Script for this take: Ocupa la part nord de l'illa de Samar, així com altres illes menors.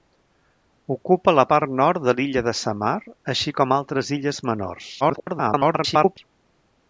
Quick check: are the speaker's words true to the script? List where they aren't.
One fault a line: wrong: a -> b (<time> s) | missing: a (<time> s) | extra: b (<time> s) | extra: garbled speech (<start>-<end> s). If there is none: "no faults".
extra: garbled speech (5.0-6.2 s)